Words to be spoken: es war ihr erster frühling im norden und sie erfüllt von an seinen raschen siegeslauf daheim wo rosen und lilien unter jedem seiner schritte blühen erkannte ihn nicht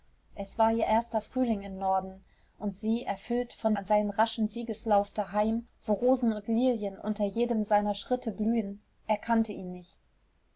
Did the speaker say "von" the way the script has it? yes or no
yes